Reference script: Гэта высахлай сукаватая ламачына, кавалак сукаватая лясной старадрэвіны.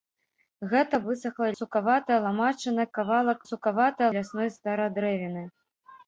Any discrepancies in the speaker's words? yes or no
no